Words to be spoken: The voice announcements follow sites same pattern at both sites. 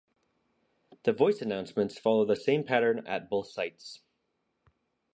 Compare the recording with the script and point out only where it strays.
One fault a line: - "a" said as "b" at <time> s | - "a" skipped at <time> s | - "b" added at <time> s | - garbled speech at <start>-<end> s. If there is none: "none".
- "sites" said as "the" at 2.2 s